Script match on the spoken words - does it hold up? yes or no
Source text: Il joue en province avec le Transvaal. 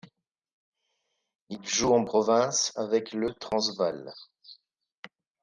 yes